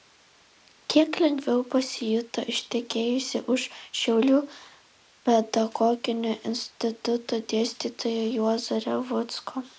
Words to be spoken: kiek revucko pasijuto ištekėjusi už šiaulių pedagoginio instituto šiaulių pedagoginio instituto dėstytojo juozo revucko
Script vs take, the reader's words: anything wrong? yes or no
yes